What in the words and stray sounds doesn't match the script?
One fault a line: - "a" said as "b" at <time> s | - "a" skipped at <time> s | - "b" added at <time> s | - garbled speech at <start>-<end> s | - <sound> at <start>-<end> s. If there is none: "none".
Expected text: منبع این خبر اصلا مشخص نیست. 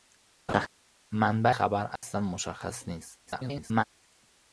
- laugh at 0.5-0.7 s
- "این" skipped at 1.5 s
- dropout at 2.0-2.0 s
- garbled speech at 3.3-3.8 s